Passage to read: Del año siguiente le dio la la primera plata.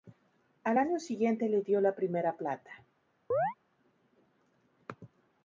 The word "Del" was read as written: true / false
false